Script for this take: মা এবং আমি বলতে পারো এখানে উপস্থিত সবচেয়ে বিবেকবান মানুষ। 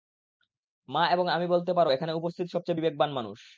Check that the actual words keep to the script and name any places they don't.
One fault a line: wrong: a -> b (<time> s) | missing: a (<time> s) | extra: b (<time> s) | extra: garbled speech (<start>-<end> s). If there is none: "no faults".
no faults